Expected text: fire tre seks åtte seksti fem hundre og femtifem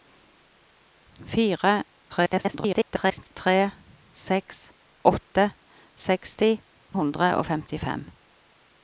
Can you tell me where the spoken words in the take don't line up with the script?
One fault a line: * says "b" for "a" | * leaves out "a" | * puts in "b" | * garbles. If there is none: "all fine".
* garbles
* leaves out "fem"